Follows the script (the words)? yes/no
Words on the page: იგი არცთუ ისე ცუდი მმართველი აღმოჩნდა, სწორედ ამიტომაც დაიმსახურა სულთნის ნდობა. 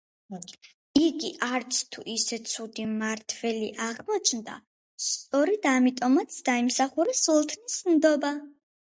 yes